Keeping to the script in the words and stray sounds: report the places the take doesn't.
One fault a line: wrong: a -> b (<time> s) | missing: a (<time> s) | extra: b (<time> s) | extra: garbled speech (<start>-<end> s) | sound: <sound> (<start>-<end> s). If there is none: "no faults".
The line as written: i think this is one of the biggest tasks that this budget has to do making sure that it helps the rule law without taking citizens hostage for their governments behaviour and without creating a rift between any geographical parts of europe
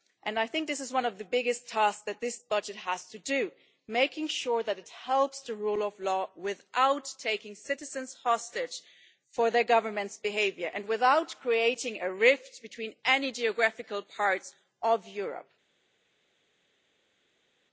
extra: of (5.8 s)